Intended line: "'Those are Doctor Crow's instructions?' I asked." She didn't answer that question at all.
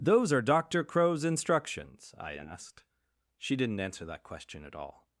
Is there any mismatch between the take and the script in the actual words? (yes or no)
no